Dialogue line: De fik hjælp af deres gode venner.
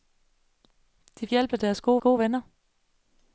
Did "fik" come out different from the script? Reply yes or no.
yes